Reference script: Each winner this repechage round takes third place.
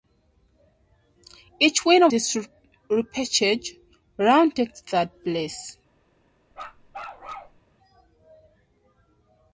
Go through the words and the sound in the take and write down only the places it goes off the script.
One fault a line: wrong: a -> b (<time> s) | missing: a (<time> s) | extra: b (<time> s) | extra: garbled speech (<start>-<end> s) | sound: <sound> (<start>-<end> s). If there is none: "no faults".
sound: bark (6.5-7.6 s)